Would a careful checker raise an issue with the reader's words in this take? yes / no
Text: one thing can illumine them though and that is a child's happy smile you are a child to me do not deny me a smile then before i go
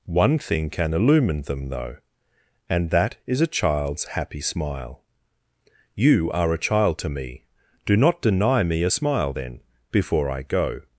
no